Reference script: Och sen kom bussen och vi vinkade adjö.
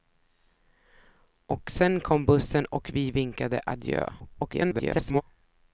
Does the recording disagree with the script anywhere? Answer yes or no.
yes